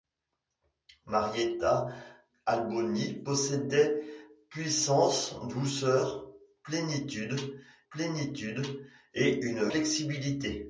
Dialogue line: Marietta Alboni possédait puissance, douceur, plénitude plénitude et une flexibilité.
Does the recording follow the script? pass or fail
pass